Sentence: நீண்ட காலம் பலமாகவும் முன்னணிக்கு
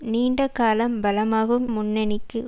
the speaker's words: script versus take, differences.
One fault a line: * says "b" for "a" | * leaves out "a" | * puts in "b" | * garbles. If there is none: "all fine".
all fine